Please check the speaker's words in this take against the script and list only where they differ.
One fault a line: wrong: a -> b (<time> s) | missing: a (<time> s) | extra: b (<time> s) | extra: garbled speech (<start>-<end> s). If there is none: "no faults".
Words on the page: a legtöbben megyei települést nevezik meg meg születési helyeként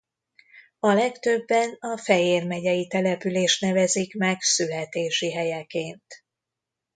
extra: a fejér (1.8 s)
missing: meg (4.4 s)